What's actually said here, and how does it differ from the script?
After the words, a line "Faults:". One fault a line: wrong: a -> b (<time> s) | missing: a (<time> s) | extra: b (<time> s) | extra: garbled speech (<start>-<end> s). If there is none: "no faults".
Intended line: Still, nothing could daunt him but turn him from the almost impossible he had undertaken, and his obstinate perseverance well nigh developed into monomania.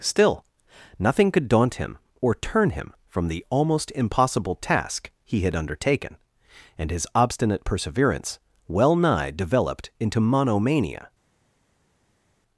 Still, nothing could daunt him or turn him from the almost impossible task he had undertaken, and his obstinate perseverance well nigh developed into monomania.
Faults:
wrong: but -> or (2.2 s)
extra: task (4.5 s)